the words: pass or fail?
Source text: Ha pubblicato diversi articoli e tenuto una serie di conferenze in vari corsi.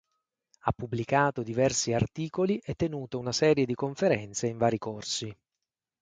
pass